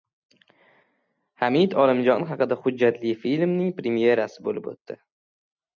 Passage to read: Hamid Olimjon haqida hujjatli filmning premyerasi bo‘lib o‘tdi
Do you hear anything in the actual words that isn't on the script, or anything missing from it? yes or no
no